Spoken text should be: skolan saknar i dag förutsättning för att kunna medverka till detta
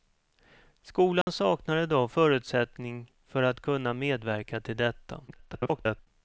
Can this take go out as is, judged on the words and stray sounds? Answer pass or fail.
fail